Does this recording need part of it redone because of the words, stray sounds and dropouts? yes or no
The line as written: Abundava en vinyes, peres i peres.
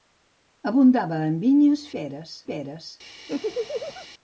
yes